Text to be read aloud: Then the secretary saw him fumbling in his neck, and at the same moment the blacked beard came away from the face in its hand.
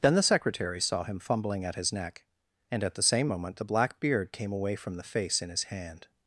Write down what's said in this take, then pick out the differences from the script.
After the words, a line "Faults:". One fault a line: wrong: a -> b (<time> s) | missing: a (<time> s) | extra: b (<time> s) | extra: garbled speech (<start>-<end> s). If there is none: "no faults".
Then the secretary saw him fumbling at his neck, and at the same moment the black beard came away from the face in his hand.
Faults:
wrong: in -> at (1.6 s)
wrong: blacked -> black (3.6 s)
wrong: its -> his (5.5 s)